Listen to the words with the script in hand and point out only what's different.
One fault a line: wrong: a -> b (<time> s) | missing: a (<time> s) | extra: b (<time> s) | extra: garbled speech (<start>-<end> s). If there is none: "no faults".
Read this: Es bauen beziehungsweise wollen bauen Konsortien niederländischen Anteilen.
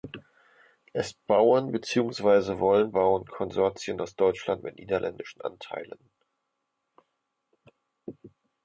extra: aus Deutschland mit (4.0 s)